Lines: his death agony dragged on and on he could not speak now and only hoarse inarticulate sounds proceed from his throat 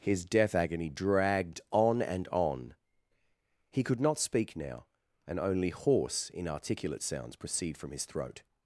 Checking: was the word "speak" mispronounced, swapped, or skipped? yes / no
no